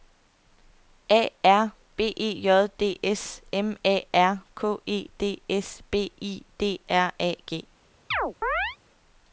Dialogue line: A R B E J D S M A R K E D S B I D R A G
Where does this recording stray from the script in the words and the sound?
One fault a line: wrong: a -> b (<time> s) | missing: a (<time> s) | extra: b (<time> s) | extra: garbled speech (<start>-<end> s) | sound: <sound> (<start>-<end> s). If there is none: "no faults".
sound: chirp (8.1-8.8 s)